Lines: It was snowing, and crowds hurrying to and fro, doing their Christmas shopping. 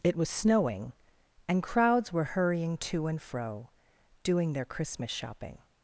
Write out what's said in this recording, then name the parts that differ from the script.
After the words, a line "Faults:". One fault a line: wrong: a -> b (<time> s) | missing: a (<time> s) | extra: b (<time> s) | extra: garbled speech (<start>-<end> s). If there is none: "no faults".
It was snowing, and crowds were hurrying to and fro, doing their Christmas shopping.
Faults:
extra: were (2.1 s)